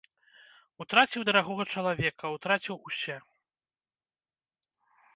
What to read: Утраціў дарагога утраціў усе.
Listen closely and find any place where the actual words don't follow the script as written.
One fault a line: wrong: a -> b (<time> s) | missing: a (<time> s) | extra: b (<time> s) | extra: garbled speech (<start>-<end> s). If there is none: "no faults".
extra: чалавека (1.7 s)